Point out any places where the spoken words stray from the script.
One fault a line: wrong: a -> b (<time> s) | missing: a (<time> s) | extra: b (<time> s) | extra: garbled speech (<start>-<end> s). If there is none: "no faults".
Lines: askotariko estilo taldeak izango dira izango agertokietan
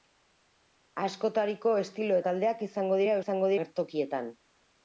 no faults